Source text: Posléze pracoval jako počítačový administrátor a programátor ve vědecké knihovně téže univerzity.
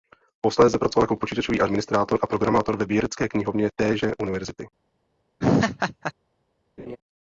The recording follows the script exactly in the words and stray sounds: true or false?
false